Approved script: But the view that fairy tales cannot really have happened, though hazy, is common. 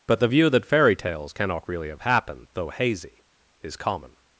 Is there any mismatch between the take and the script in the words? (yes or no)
no